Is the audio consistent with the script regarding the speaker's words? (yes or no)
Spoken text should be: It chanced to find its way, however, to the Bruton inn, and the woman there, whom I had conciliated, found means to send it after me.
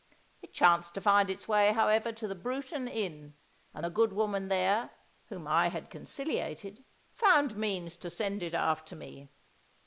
no